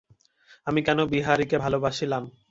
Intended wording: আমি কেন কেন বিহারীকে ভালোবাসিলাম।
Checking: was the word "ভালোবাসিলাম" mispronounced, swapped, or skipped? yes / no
no